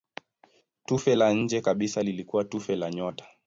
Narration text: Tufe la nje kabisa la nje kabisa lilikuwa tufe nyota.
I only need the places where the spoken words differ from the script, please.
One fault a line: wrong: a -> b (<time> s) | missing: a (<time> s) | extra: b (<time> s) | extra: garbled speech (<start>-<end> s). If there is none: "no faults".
missing: la nje kabisa (2.0 s)
extra: la (2.8 s)